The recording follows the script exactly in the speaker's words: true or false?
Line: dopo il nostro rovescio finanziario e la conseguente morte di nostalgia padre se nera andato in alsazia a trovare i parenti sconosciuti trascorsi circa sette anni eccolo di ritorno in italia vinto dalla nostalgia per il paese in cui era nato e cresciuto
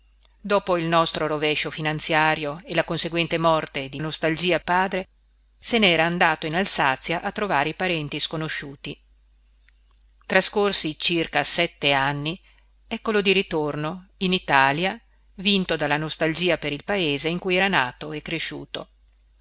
true